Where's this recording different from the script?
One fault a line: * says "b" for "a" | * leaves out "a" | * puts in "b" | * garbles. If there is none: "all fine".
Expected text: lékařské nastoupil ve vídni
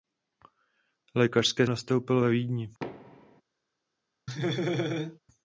all fine